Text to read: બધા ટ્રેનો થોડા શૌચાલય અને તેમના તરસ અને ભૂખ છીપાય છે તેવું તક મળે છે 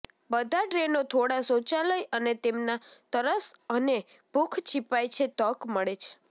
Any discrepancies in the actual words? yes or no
yes